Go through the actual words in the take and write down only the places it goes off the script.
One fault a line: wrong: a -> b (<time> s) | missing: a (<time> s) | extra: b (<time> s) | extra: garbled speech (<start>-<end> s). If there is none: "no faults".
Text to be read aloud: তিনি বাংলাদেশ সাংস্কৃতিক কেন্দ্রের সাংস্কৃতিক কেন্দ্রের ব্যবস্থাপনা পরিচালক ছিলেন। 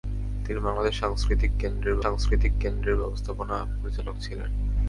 no faults